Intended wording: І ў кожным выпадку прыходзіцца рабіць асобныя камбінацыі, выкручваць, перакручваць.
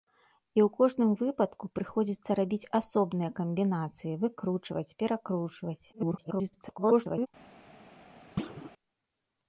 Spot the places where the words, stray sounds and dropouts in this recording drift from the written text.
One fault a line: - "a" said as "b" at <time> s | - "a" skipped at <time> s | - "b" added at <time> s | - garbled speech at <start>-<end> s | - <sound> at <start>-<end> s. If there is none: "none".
- garbled speech at 5.9-7.3 s
- thud at 8.4-8.7 s